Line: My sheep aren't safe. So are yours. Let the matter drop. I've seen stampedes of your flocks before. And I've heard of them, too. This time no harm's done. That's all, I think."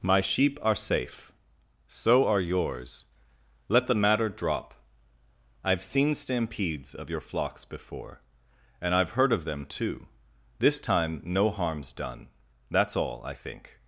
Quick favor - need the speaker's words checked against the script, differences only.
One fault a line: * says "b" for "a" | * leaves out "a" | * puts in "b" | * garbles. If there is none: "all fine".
* says "are" for "aren't"